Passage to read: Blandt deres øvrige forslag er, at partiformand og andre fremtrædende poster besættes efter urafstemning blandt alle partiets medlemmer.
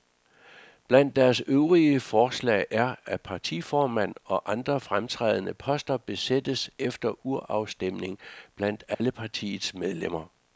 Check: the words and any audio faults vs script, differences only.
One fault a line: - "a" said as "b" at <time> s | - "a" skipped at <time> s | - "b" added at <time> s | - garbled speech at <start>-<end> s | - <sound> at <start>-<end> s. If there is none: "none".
- dropout at 8.9-9.0 s